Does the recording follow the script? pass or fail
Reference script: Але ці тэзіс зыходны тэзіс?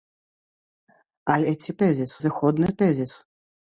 pass